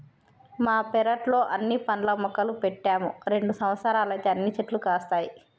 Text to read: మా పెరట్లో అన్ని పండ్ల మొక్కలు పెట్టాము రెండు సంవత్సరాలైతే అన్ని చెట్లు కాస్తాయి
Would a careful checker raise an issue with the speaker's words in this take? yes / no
no